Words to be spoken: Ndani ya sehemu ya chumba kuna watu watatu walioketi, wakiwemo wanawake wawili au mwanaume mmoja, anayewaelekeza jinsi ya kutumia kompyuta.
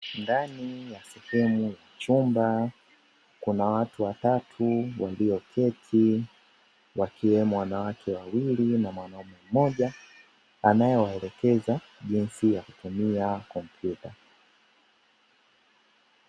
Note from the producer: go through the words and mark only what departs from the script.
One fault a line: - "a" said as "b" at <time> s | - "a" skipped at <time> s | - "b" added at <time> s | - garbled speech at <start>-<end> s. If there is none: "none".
- "au" said as "na" at 8.8 s